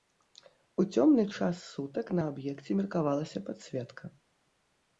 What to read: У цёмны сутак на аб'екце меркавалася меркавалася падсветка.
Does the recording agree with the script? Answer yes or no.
no